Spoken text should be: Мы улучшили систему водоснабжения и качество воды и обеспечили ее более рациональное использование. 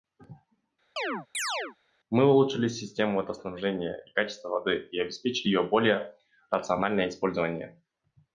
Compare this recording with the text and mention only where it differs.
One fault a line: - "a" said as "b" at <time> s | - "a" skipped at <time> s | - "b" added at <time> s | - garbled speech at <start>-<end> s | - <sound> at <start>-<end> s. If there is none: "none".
- chirp at 1.0-1.8 s